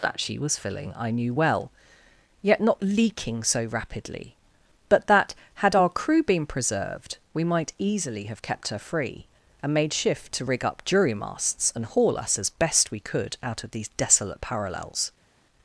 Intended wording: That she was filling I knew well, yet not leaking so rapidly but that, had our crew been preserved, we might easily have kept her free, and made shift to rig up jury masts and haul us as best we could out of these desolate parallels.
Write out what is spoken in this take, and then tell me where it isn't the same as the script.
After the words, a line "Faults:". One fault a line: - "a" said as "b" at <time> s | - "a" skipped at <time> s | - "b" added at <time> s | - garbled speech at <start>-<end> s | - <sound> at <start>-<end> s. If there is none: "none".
That she was filling I knew well, yet not leaking so rapidly but that, had our crew been preserved, we might easily have kept her free, and made shift to rig up jury masts and haul us as best we could out of these desolate parallels.
Faults:
none